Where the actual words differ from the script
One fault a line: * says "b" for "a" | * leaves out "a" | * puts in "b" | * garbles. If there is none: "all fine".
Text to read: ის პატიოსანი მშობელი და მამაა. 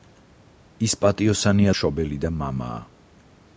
all fine